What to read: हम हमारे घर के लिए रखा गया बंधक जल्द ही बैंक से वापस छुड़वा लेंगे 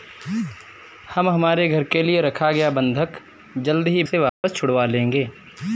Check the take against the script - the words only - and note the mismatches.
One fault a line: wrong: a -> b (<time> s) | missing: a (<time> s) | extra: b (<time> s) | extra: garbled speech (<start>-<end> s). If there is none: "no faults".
missing: बैंक (4.0 s)